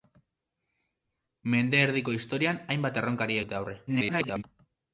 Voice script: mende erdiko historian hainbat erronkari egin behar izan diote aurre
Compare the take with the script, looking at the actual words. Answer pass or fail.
fail